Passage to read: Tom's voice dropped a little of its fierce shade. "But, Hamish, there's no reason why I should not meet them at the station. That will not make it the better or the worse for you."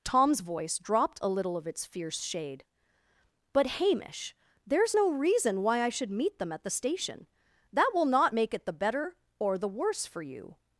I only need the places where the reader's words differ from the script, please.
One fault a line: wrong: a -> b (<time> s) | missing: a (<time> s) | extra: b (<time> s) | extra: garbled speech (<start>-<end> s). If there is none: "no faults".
missing: not (6.1 s)